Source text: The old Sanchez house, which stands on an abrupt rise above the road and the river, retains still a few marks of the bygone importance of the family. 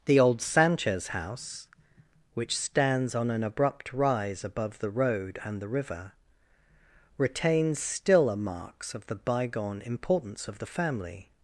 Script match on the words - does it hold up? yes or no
no